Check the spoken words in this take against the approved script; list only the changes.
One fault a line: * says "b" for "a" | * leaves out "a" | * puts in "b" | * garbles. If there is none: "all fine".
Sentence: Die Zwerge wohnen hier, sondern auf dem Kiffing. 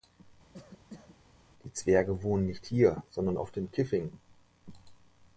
* puts in "nicht"